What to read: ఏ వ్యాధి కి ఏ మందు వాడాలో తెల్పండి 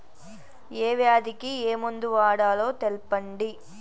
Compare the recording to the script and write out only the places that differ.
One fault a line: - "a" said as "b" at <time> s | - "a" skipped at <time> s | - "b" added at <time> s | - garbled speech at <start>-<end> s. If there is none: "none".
none